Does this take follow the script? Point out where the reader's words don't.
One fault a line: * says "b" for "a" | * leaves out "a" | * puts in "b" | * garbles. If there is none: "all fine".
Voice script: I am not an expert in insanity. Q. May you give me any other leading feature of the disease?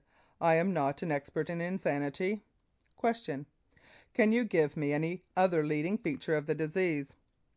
* says "Can" for "May"